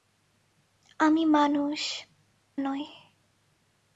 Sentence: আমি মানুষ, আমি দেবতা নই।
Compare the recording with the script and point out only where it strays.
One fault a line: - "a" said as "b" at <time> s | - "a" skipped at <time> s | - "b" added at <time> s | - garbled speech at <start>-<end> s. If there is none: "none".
- "আমি দেবতা" skipped at 1.8 s